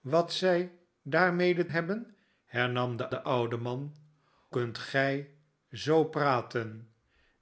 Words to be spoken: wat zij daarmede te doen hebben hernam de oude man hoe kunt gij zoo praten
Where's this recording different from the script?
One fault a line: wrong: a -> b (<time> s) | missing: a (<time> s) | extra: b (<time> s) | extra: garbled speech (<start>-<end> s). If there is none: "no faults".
missing: te doen (1.7 s)
extra: de (3.1 s)
missing: hoe (4.0 s)